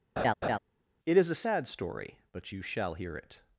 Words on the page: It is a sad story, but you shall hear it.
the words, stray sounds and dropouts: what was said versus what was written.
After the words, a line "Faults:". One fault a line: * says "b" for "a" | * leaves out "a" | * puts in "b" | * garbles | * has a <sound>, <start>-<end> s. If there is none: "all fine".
It is a sad story, but you shall hear it.
Faults:
* has a laugh, 0.2-0.6 s